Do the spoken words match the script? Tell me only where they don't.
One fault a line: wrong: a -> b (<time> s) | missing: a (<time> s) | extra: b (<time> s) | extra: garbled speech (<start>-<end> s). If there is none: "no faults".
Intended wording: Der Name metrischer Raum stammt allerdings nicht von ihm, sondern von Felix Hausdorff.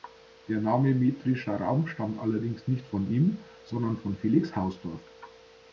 no faults